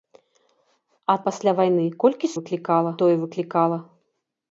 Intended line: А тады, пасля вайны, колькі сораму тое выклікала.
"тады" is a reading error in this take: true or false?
true